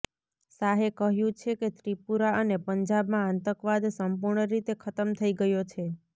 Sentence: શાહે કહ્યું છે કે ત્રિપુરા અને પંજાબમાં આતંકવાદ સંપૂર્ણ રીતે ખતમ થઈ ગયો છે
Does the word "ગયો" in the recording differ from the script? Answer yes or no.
no